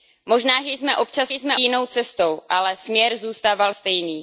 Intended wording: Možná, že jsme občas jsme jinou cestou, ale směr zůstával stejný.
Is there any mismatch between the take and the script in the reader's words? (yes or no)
no